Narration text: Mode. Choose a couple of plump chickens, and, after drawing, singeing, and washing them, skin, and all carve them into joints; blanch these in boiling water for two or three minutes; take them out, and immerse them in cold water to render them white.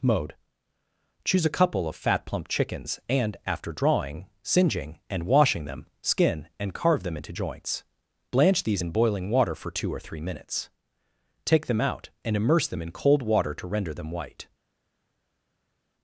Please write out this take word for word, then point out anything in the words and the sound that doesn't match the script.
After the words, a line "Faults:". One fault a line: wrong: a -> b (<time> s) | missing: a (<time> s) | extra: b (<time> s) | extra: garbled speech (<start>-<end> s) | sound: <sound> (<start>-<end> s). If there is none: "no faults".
Mode. Choose a couple of fat plump chickens, and, after drawing, singeing, and washing them, skin, and carve them into joints; blanch these in boiling water for two or three minutes; take them out, and immerse them in cold water to render them white.
Faults:
extra: fat (1.9 s)
missing: all (6.7 s)